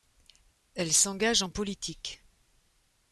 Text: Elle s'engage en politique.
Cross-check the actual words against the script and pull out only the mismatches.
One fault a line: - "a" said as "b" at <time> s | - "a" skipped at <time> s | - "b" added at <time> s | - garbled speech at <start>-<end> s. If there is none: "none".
none